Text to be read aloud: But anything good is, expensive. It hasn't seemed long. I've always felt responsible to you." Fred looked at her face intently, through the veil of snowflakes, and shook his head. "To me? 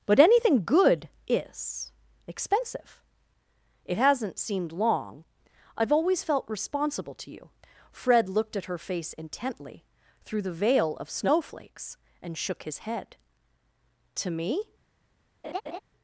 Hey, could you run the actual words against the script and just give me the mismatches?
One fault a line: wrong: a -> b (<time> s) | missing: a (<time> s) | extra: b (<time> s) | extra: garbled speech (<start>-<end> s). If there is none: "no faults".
no faults